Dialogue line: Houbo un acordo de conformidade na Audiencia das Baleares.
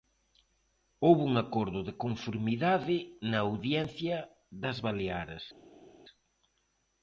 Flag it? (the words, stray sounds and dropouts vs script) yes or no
no